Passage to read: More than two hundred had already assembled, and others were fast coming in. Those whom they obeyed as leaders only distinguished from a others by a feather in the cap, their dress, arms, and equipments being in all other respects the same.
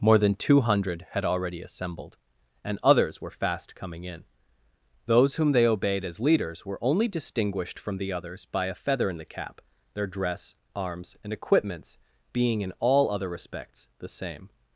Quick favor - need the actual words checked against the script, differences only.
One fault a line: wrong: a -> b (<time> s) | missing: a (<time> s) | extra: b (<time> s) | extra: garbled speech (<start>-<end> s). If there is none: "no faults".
extra: were (6.7 s)
wrong: a -> the (8.0 s)